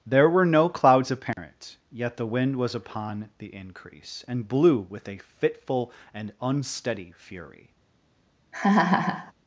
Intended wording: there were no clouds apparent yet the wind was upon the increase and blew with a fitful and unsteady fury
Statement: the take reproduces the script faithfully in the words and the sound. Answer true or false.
false